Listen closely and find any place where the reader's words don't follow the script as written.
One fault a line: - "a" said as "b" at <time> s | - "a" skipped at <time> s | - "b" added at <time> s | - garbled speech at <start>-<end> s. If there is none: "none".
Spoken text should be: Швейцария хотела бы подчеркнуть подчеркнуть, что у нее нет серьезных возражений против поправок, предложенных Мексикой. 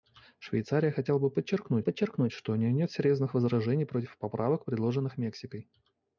none